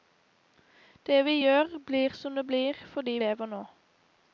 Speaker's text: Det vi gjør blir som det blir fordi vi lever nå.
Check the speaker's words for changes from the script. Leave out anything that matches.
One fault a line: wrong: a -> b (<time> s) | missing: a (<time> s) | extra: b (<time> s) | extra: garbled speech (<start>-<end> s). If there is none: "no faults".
missing: vi (3.2 s)